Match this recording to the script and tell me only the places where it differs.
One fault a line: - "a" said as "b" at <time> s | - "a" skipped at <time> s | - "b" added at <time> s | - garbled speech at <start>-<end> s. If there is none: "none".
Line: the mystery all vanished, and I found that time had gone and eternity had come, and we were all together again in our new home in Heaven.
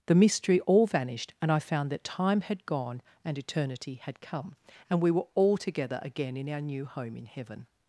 none